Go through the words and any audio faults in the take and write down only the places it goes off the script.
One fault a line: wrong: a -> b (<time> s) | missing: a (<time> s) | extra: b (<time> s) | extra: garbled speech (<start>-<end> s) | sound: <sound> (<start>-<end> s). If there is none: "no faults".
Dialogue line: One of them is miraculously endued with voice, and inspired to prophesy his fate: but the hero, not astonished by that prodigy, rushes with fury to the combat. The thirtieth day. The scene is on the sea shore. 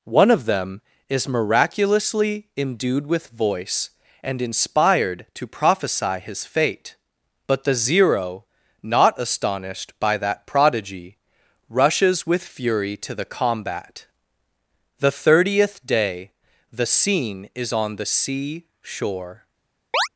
wrong: hero -> zero (7.7 s)
sound: chirp (19.9-20.1 s)